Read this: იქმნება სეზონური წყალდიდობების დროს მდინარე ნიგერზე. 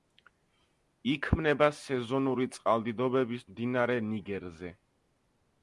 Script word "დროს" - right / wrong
wrong